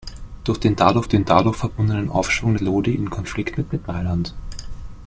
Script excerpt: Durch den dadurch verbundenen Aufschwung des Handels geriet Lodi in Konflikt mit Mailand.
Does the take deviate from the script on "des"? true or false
true